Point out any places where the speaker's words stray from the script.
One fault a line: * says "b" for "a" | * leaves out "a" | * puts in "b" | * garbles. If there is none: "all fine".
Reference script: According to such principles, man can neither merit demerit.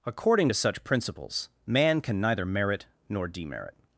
* puts in "nor"